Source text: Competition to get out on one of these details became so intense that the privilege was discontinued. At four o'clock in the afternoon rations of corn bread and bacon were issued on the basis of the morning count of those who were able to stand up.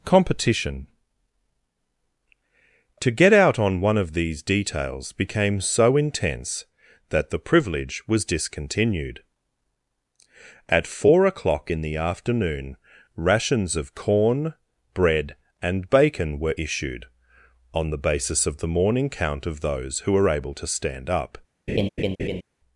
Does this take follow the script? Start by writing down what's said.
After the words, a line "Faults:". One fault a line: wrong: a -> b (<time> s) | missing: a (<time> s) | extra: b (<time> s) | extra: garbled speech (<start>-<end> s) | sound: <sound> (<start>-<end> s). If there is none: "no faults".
Competition to get out on one of these details became so intense that the privilege was discontinued. At four o'clock in the afternoon rations of corn bread and bacon were issued on the basis of the morning count of those who were able to stand up.
Faults:
sound: laugh (21.7-22.4 s)